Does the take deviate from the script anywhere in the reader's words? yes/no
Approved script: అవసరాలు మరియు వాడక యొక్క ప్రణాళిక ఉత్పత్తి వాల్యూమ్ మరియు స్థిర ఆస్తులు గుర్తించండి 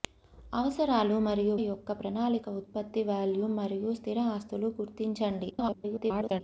yes